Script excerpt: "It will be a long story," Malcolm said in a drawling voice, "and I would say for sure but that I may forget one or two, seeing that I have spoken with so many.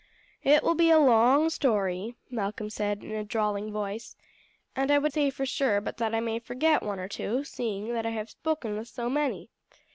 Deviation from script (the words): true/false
false